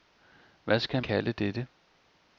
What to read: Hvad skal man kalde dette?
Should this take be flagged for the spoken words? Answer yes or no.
yes